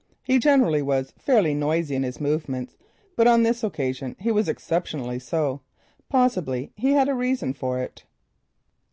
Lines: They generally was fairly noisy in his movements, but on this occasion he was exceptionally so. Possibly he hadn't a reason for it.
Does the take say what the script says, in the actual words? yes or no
no